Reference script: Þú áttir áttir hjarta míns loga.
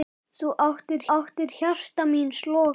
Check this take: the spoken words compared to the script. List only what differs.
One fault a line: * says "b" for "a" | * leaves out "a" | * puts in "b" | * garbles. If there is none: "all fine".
all fine